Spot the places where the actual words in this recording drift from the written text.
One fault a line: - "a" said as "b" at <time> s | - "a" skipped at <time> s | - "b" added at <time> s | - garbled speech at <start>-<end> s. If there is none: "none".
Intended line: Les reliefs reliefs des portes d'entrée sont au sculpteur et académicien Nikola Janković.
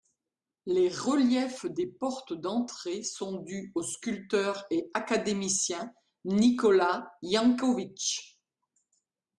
- "reliefs" skipped at 1.7 s
- "dus" added at 3.4 s